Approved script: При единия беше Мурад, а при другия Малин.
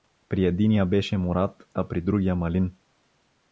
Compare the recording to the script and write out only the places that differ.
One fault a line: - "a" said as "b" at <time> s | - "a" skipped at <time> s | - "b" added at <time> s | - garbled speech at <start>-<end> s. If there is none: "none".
none